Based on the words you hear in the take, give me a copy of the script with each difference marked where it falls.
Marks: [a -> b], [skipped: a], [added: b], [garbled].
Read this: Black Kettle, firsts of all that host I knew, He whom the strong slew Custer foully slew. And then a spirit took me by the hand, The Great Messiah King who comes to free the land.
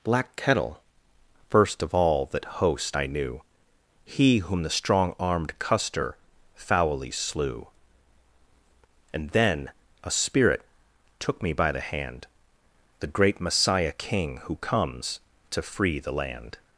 Black Kettle, [firsts -> first] of all that host I knew, He whom the strong [slew -> armed] Custer foully slew. And then a spirit took me by the hand, The Great Messiah King who comes to free the land.